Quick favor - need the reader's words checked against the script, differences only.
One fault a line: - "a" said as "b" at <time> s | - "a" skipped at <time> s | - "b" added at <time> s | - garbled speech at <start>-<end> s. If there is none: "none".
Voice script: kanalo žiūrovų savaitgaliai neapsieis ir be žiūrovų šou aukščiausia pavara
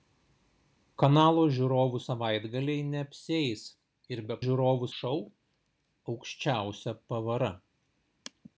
none